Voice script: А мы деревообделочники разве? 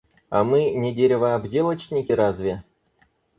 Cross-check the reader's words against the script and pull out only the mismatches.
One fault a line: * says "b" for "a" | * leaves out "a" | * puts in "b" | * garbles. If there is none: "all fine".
* puts in "не"